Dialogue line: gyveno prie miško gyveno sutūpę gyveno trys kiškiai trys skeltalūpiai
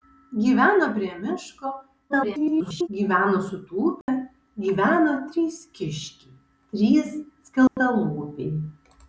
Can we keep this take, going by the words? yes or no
no